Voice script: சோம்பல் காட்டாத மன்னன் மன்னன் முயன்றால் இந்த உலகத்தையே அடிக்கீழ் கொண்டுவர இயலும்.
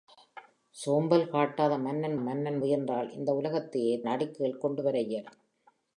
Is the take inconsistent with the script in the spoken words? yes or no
no